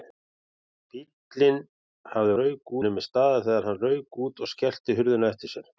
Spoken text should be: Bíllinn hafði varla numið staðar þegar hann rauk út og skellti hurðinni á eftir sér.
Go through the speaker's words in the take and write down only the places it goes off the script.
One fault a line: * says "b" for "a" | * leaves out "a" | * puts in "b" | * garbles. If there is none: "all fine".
* says "rauk" for "varla"